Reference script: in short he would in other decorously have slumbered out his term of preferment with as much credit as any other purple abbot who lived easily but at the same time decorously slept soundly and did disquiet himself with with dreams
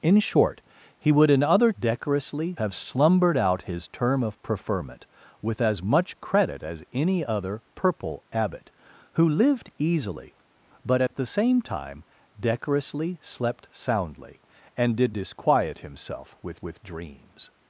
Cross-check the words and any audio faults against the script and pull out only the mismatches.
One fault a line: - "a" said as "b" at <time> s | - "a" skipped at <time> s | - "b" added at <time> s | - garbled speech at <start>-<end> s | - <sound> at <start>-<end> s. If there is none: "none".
- dropout at 11.1-11.1 s